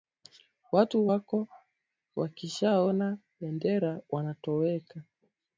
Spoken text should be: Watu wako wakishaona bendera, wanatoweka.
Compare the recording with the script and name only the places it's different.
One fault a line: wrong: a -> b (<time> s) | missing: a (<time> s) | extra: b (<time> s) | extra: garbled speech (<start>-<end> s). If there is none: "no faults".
no faults